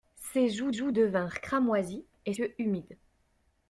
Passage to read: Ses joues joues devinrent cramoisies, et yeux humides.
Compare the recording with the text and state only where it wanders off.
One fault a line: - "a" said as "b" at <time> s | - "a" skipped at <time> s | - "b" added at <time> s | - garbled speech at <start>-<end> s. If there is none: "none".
none